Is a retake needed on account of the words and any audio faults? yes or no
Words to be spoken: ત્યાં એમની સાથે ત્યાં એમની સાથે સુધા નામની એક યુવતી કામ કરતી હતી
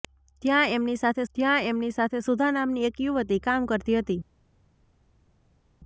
no